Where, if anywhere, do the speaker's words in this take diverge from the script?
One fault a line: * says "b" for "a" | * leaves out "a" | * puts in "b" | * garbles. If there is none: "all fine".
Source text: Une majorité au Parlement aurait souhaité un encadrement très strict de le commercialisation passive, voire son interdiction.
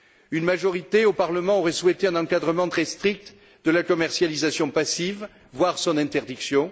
* says "la" for "le"